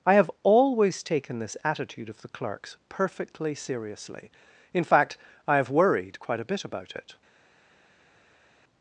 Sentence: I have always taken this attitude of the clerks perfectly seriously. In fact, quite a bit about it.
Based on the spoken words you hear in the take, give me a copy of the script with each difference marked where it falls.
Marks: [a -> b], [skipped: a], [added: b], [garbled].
I have always taken this attitude of the clerks perfectly seriously. In fact, [added: I have worried] quite a bit about it.